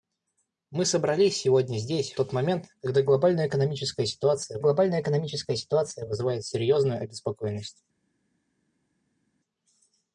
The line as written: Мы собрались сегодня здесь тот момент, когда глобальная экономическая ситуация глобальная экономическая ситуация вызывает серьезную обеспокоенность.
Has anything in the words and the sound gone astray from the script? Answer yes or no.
no